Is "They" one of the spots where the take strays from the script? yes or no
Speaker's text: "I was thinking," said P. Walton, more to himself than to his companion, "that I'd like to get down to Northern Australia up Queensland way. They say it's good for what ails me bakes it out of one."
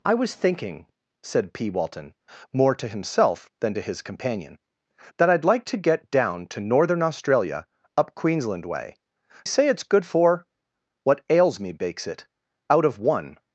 yes